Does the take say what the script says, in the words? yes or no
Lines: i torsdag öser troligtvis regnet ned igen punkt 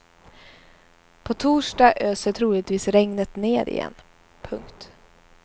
no